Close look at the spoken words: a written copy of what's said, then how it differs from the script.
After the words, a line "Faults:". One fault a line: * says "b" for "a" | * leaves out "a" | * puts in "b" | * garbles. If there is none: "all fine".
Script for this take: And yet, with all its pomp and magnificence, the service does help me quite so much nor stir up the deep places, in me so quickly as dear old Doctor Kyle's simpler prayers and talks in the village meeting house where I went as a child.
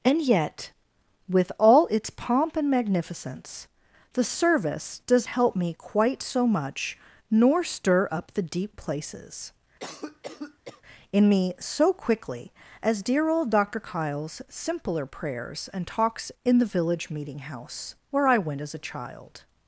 And yet, with all its pomp and magnificence, the service does help me quite so much nor stir up the deep places, in me so quickly as dear old Doctor Kyle's simpler prayers and talks in the village meeting house where I went as a child.
Faults:
all fine